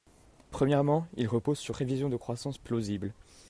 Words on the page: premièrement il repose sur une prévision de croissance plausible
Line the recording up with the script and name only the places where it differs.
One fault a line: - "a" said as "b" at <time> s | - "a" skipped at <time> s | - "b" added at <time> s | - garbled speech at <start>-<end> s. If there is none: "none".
- "une" skipped at 1.8 s